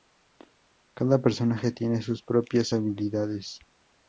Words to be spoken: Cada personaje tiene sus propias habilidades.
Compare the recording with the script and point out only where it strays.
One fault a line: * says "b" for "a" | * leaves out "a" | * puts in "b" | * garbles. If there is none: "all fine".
all fine